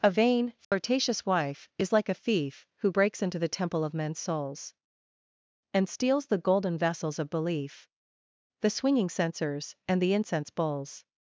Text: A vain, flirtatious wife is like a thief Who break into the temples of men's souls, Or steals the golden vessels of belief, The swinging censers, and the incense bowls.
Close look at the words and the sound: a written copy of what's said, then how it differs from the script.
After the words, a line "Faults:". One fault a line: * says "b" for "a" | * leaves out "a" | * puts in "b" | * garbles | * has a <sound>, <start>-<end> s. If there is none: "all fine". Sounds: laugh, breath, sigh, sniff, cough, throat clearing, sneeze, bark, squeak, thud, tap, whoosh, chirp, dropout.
A vain, flirtatious wife is like a thief Who breaks into the temple of men's souls, And steals the golden vessels of belief, The swinging censers, and the incense bowls.
Faults:
* has a dropout, 0.6-0.7 s
* says "breaks" for "break"
* says "temple" for "temples"
* says "And" for "Or"